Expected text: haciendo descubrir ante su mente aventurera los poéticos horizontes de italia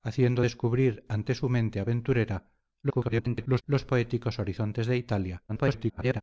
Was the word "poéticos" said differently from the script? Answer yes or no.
no